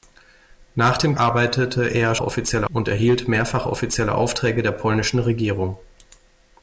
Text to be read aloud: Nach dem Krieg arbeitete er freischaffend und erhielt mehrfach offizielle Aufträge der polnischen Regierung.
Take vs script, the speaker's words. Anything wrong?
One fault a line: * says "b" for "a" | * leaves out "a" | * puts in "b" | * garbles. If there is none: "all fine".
* leaves out "Krieg"
* says "offizielle" for "freischaffend"